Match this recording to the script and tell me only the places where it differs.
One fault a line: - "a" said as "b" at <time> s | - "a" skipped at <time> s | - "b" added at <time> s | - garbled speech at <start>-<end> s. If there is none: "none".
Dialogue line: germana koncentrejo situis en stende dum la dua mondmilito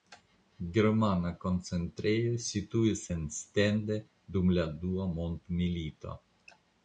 none